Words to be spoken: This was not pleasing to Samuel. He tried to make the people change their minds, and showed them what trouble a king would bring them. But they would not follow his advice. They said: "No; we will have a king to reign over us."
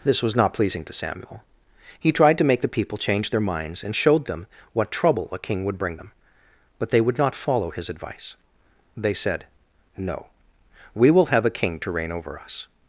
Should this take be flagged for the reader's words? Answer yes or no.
no